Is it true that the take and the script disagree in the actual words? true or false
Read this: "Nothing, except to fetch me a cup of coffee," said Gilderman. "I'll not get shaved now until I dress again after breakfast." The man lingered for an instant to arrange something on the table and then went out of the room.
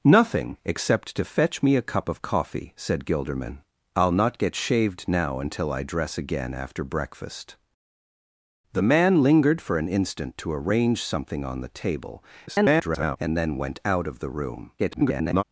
true